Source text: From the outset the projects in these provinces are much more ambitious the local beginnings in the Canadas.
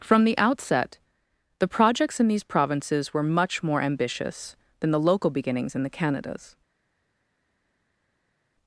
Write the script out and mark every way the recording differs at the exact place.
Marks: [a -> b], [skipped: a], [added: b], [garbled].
From the outset the projects in these provinces [are -> were] much more ambitious [added: than] the local beginnings in the Canadas.